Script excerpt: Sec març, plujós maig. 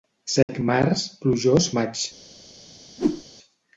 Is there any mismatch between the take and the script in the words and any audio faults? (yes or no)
yes